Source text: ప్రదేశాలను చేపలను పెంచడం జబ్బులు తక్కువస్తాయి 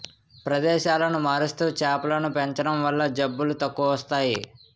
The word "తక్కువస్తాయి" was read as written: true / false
true